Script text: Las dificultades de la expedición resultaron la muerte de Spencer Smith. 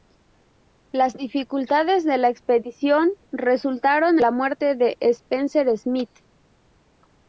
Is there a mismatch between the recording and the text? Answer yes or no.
no